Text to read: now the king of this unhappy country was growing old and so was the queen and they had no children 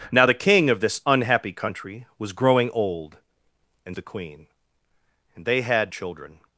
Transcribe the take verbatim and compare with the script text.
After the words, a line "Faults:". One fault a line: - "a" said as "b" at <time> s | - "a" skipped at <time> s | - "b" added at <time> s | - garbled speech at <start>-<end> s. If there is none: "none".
now the king of this unhappy country was growing old and the queen and they had children
Faults:
- "so was" skipped at 4.0 s
- "no" skipped at 5.9 s